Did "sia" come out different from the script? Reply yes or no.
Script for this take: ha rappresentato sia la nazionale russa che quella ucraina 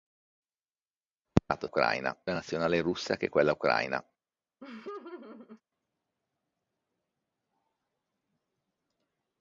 yes